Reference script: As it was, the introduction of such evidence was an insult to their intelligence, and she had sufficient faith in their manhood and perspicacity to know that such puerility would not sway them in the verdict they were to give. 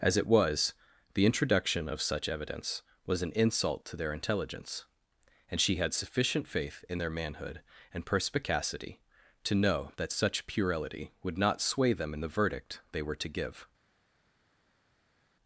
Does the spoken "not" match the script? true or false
true